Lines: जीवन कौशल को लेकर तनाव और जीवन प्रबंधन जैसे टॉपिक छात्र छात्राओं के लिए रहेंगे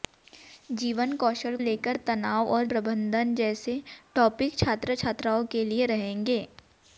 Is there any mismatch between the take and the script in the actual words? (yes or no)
yes